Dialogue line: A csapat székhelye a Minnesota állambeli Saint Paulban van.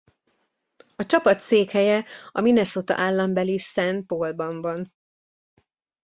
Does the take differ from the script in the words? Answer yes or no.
no